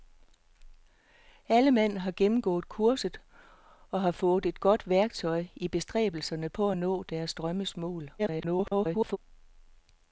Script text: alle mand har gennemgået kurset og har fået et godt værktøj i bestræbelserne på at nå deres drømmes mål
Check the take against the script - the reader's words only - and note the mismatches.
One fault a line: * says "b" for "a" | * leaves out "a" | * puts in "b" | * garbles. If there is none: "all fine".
* garbles